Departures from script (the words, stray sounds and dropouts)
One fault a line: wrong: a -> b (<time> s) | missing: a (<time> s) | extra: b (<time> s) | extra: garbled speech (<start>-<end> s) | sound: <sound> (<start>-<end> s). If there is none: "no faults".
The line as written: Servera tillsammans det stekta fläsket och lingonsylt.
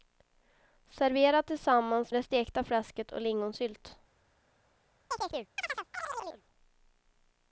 sound: chirp (5.1-6.4 s)